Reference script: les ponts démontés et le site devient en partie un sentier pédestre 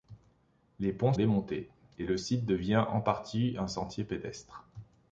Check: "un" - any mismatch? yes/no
no